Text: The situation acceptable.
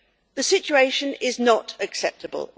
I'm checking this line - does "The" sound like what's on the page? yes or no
yes